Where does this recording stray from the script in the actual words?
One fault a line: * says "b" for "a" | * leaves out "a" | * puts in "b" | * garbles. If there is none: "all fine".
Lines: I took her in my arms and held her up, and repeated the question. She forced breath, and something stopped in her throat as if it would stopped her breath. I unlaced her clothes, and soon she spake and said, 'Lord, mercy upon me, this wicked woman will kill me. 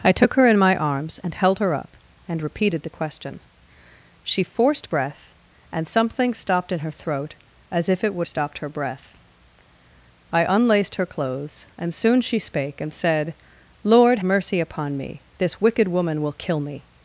all fine